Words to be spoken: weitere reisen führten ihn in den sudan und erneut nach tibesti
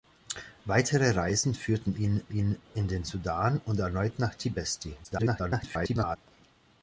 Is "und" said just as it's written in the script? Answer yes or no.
yes